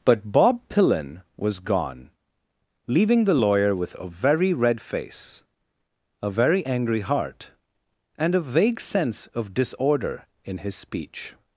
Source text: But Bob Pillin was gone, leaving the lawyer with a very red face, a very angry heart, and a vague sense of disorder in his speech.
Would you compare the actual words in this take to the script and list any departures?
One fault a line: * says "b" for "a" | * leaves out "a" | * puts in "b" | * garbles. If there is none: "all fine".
all fine